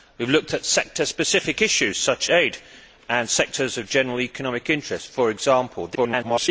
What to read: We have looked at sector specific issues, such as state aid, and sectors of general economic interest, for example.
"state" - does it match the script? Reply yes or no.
no